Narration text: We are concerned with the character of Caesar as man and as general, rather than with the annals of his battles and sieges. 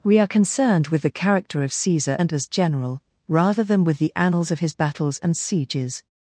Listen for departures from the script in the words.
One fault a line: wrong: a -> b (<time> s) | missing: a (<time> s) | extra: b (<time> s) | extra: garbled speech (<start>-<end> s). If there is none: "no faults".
missing: as man (2.2 s)